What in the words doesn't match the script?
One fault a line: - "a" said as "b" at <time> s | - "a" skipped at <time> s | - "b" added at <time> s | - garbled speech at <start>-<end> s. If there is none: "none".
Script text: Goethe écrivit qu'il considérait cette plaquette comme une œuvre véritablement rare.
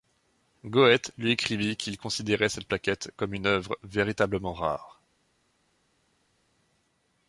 - "lui" added at 1.2 s